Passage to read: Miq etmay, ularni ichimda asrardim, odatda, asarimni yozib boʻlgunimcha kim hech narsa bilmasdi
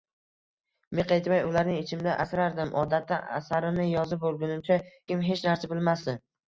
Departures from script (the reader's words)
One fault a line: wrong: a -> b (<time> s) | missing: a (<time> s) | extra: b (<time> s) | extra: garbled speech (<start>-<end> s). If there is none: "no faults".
no faults